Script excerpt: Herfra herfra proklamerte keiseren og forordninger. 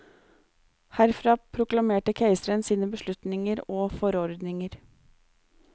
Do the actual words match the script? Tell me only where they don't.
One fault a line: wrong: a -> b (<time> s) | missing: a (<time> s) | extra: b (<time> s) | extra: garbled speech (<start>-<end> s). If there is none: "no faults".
missing: herfra (1.4 s)
extra: sine beslutninger (2.7 s)